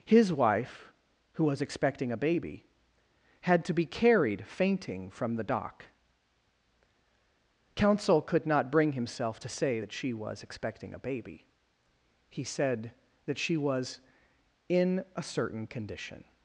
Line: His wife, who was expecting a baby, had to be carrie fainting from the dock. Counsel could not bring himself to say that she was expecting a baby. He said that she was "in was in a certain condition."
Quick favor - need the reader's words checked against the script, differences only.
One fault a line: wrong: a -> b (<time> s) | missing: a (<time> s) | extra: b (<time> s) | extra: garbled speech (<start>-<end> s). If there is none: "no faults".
wrong: carrie -> carried (3.9 s)
missing: was in (15.0 s)